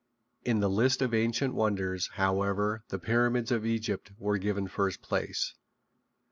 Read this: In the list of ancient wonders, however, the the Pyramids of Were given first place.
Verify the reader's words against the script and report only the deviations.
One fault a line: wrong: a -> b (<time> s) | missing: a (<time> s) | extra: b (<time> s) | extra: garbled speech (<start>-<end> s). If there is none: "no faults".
missing: the (3.0 s)
extra: Egypt (3.6 s)